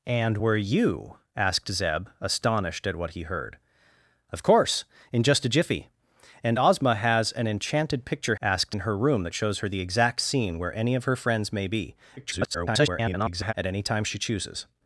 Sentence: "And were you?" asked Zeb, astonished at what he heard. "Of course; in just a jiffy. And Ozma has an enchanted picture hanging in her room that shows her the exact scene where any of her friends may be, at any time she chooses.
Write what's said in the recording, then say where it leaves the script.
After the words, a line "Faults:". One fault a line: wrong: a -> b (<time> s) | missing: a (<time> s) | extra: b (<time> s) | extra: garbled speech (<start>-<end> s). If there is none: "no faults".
"And were you?" asked Zeb, astonished at what he heard. "Of course; in just a jiffy. And Ozma has an enchanted picture asked in her room that shows her the exact scene where any of her friends may be, [garbled] at any time she chooses.
Faults:
wrong: hanging -> asked (8.4 s)
extra: garbled speech (12.2-13.5 s)